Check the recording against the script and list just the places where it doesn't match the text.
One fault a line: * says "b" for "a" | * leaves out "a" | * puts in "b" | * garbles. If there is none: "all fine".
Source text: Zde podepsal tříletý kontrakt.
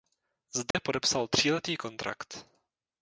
all fine